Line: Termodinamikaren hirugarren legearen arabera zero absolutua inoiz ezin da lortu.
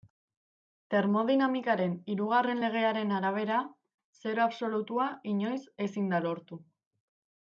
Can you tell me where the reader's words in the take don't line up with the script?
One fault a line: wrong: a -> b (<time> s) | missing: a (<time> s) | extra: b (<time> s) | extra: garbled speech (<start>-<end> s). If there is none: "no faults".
no faults